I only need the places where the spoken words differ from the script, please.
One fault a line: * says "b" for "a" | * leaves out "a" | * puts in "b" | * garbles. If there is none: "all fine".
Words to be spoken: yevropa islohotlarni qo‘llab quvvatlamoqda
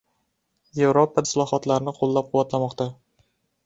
all fine